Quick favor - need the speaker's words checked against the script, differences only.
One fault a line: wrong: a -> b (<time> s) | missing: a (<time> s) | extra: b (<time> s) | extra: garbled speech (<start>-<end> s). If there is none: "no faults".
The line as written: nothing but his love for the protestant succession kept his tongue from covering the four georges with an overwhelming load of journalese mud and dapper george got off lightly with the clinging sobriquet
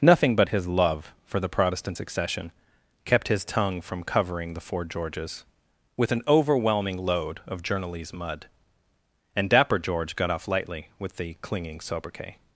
no faults